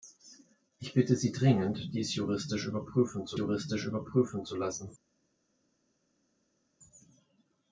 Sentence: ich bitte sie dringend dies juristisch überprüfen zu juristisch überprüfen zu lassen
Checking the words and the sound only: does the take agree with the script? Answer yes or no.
yes